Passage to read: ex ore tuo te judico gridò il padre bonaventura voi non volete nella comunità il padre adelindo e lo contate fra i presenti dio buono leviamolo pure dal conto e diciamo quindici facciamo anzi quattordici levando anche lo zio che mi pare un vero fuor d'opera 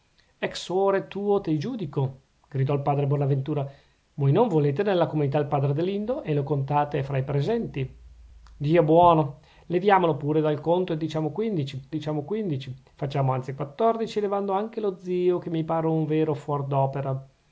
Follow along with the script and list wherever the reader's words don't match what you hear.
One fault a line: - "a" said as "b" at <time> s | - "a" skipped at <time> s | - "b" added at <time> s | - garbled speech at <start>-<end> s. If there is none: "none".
- "diciamo quindici" added at 11.9 s